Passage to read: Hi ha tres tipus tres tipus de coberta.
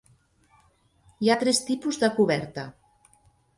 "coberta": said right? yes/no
yes